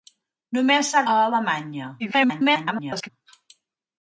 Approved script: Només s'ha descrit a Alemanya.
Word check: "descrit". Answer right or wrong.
wrong